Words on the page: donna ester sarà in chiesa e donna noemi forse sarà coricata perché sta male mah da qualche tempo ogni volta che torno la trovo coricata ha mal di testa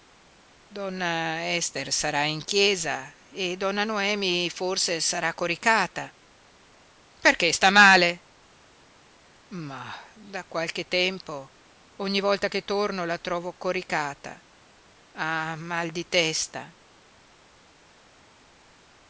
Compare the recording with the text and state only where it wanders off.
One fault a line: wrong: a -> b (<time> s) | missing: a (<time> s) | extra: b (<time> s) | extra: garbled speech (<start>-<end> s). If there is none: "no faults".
no faults